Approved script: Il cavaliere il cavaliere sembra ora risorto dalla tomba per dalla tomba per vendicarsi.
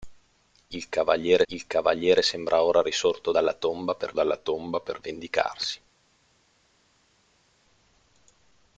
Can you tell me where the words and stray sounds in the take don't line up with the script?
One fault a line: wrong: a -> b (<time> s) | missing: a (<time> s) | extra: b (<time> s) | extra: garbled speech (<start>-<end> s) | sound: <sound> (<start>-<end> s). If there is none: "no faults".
no faults